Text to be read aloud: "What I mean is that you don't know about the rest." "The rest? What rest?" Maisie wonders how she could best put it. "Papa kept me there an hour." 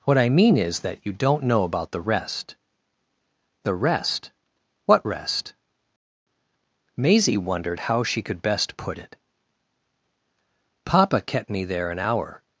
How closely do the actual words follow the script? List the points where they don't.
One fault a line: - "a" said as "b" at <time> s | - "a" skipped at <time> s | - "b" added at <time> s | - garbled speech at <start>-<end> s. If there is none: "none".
- "wonders" said as "wondered" at 7.4 s